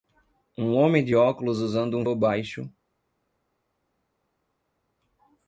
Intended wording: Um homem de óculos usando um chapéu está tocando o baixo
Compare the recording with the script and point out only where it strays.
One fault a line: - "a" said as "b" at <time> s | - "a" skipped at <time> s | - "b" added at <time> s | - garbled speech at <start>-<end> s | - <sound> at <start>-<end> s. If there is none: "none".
- "chapéu está tocando" skipped at 2.1 s